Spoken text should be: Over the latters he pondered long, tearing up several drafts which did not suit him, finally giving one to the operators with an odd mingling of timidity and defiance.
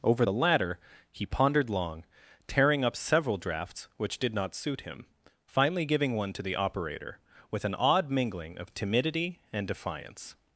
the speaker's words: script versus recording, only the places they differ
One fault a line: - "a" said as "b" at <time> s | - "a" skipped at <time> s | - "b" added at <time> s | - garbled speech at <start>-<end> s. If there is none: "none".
- "latters" said as "latter" at 0.3 s
- "operators" said as "operator" at 6.5 s